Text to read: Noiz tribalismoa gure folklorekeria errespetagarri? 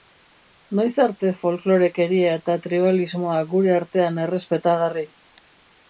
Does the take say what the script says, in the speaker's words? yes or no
no